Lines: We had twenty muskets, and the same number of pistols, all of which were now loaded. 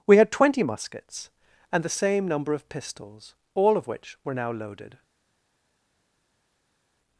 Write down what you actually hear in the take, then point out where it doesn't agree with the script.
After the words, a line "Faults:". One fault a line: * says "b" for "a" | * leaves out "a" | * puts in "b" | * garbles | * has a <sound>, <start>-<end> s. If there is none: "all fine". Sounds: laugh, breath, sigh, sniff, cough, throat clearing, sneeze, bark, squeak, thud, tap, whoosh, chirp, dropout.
We had twenty muskets, and the same number of pistols, all of which were now loaded.
Faults:
all fine